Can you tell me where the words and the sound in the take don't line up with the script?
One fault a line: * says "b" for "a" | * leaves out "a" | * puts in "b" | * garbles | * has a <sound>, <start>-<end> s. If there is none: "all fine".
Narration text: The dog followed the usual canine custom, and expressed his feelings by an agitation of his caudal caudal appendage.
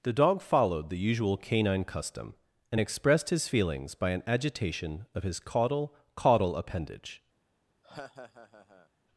* has a laugh, 7.8-8.9 s